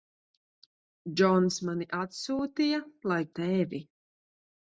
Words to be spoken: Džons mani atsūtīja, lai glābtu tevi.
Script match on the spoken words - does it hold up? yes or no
no